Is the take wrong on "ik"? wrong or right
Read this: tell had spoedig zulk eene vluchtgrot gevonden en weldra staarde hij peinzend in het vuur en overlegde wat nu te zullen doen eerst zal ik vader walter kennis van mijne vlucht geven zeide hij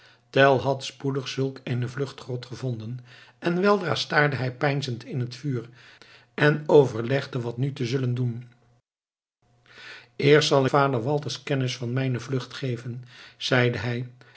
wrong